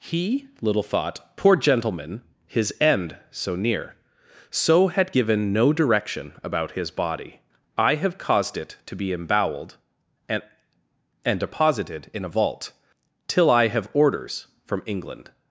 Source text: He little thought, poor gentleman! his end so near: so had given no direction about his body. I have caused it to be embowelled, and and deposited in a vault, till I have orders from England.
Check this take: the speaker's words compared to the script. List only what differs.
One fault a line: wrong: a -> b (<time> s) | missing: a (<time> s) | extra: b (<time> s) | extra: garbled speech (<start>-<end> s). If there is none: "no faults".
no faults